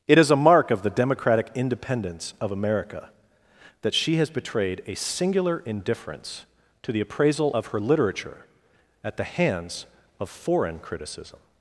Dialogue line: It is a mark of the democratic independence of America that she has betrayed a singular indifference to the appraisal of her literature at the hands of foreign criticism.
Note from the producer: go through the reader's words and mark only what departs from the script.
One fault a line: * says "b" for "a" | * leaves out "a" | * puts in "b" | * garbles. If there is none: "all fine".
all fine